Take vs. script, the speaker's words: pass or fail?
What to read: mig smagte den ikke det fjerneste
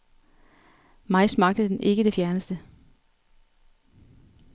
pass